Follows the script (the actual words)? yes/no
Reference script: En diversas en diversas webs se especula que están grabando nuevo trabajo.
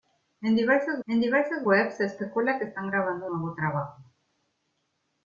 yes